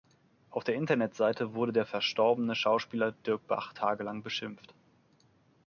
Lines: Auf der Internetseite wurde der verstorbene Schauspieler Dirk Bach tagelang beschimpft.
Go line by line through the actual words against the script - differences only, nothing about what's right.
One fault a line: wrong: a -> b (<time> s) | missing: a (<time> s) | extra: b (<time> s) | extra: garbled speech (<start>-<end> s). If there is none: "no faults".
no faults